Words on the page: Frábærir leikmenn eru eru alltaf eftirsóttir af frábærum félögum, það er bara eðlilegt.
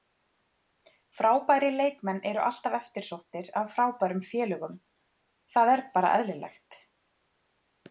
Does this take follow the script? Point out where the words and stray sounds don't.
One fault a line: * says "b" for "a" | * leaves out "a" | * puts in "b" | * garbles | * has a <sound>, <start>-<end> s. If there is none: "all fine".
* leaves out "eru"